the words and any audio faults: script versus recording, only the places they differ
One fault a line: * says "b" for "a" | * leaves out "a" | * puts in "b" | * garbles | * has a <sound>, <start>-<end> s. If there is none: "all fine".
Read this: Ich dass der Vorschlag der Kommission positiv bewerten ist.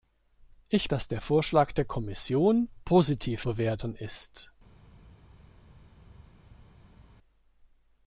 all fine